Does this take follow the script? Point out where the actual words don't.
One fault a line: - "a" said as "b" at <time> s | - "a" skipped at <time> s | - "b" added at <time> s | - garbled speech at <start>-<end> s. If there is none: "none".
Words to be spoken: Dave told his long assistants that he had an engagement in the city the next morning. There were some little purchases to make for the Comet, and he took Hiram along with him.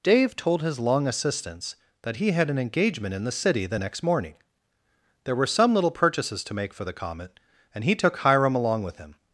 none